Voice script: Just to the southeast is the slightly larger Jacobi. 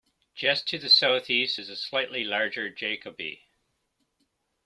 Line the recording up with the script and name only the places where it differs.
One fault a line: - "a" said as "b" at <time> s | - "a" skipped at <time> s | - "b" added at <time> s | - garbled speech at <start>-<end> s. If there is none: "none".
none